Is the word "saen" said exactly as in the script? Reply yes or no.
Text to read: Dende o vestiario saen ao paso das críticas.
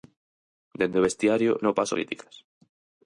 no